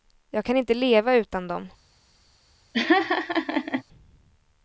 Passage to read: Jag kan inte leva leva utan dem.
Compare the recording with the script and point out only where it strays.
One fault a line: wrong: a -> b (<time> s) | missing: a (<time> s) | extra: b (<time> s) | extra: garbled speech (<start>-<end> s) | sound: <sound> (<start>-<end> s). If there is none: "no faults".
missing: leva (1.1 s)
sound: laugh (2.7-3.8 s)